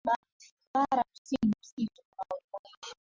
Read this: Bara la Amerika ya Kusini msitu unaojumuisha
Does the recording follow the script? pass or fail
fail